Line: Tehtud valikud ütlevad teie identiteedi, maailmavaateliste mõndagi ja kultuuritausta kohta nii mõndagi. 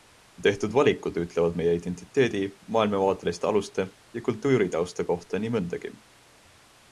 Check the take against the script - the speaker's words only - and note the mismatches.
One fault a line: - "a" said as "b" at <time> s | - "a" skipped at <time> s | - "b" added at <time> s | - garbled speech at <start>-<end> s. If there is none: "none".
- "teie" said as "meie" at 1.6 s
- "mõndagi" said as "aluste" at 3.5 s